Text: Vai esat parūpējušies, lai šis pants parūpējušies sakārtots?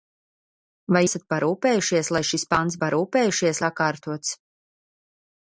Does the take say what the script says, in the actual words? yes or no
yes